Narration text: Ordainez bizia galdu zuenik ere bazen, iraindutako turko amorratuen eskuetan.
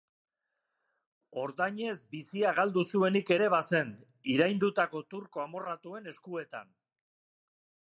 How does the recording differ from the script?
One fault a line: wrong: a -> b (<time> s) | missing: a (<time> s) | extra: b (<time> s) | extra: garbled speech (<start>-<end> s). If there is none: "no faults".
no faults